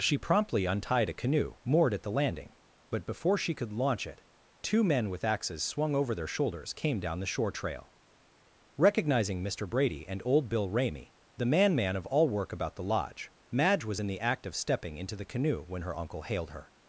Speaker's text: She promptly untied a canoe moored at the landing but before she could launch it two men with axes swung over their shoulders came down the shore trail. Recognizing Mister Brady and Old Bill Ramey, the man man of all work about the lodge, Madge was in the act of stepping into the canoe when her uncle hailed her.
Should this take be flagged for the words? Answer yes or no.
no